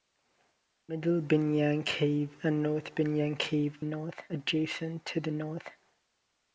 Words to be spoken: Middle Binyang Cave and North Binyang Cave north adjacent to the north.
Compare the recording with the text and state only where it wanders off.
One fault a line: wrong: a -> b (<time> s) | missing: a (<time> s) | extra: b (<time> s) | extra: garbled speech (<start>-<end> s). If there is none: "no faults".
no faults